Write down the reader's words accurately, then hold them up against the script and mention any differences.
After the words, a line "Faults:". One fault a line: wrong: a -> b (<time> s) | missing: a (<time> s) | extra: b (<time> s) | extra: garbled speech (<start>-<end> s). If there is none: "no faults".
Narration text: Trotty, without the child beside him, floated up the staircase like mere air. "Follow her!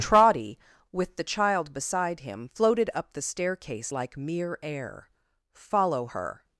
Trotty, with the child beside him, floated up the staircase like mere air. "Follow her!
Faults:
wrong: without -> with (0.9 s)